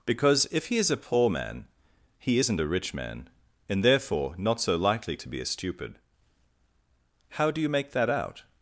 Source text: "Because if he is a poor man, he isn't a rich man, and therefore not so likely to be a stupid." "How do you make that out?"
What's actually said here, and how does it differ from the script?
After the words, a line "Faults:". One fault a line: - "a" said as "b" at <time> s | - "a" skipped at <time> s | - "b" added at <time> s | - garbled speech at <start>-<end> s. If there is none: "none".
"Because if he is a poor man, he isn't a rich man, and therefore not so likely to be a stupid." "How do you make that out?"
Faults:
none